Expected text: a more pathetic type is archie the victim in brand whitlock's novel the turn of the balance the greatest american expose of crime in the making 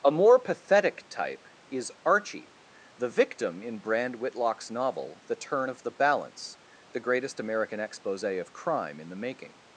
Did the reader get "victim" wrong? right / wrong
right